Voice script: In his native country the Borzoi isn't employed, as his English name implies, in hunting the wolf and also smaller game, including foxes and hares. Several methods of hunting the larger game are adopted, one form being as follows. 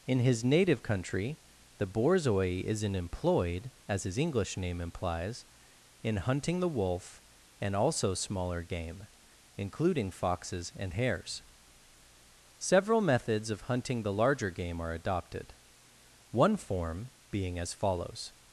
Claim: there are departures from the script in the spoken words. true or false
false